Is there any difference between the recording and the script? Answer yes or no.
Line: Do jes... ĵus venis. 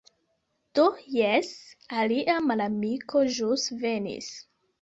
yes